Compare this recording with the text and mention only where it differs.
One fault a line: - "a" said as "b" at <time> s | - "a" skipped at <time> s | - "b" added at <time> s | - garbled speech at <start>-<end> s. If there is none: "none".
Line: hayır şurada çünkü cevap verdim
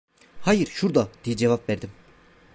- "çünkü" said as "diye" at 1.2 s